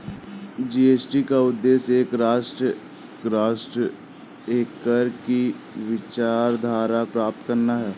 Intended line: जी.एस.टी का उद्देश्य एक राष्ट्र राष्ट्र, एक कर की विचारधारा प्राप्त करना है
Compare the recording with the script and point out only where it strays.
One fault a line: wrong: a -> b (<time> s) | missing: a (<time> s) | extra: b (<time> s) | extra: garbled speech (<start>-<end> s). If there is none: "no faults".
no faults